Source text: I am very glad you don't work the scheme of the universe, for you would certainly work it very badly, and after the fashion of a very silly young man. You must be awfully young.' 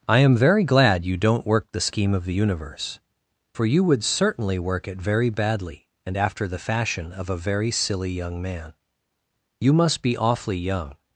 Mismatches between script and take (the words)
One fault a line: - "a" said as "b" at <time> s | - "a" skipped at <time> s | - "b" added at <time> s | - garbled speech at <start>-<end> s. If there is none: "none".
none